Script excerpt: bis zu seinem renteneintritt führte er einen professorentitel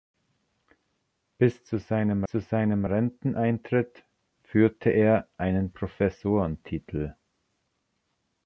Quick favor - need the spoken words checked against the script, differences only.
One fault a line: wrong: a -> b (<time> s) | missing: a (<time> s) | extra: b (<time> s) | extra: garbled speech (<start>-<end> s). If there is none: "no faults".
extra: zu seinem (2.2 s)